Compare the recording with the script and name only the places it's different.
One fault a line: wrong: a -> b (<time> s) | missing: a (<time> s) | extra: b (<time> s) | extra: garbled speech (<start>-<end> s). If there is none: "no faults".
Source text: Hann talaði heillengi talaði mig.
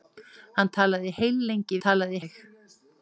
no faults